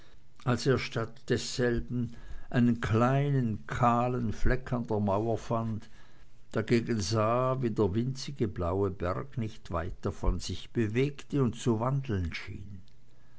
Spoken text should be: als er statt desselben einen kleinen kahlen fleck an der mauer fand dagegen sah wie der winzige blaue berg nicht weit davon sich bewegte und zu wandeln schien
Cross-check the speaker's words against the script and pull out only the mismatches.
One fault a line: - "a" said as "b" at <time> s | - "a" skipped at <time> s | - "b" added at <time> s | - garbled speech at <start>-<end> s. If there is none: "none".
none